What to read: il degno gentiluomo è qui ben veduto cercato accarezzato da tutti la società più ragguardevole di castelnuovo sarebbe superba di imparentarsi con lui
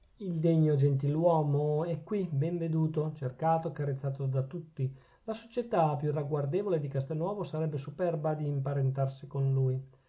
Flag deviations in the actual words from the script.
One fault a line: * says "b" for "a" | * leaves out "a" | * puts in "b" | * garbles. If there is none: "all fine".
all fine